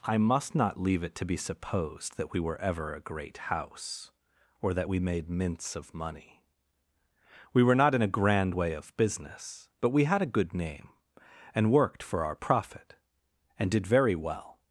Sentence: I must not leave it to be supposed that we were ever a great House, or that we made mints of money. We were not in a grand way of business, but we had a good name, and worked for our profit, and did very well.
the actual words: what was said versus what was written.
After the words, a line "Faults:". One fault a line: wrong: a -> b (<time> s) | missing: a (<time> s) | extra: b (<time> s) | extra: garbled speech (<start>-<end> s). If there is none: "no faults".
I must not leave it to be supposed that we were ever a great House, or that we made mints of money. We were not in a grand way of business, but we had a good name, and worked for our profit, and did very well.
Faults:
no faults